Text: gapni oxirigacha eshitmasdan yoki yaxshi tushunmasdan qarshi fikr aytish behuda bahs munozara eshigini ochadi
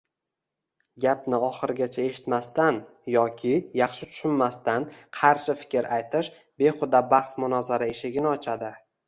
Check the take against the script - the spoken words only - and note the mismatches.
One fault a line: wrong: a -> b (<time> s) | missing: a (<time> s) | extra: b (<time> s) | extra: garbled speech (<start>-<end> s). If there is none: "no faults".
no faults